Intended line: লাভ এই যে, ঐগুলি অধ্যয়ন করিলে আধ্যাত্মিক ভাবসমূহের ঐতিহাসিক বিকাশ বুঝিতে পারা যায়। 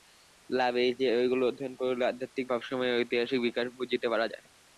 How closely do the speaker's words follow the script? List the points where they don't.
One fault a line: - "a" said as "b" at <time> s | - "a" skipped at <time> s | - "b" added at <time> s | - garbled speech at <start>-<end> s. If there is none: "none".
none